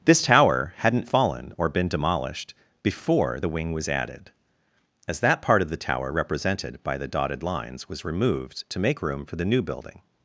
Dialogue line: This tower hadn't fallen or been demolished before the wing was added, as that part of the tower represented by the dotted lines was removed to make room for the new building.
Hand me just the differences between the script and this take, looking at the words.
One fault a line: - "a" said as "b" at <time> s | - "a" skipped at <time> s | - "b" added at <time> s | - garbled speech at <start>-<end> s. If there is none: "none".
none